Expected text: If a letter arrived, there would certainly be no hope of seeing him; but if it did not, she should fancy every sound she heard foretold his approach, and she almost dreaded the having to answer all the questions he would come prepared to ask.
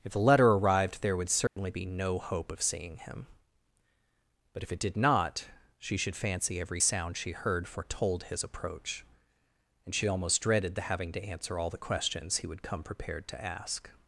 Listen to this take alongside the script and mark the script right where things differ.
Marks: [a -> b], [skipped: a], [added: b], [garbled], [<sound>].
If [a -> the] letter arrived, there would certainly [dropout] be no hope of seeing him; but if it did not, she should fancy every sound she heard foretold his approach, and she almost dreaded the having to answer all the questions he would come prepared to ask.